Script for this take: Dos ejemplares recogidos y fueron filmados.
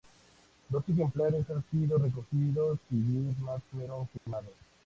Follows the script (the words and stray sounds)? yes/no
no